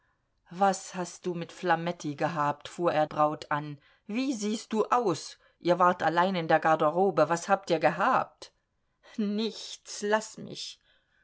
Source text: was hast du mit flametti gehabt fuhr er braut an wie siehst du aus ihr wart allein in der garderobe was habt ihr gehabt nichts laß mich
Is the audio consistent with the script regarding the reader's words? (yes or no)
yes